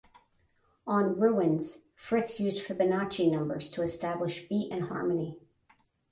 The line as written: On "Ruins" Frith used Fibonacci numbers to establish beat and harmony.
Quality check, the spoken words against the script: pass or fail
pass